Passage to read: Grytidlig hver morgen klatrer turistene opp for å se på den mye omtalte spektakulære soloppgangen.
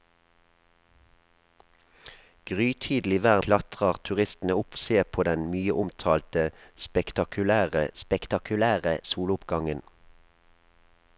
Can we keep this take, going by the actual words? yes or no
no